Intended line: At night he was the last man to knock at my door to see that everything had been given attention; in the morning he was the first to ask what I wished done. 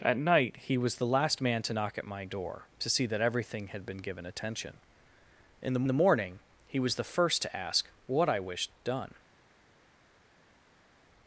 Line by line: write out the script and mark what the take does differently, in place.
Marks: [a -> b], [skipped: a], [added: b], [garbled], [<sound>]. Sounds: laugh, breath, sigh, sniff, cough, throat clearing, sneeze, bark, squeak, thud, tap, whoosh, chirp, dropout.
At night he was the last man to knock at my door to see that everything had been given attention; in the [added: the] morning he was the first to ask what I wished done.